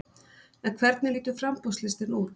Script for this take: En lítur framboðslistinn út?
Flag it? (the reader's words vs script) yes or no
yes